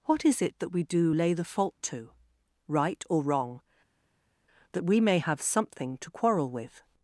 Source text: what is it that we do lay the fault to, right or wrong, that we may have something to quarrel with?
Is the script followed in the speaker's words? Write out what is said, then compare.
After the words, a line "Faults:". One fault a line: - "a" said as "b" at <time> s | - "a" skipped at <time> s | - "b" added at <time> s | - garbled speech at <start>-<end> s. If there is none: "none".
what is it that we do lay the fault to, right or wrong, that we may have something to quarrel with?
Faults:
none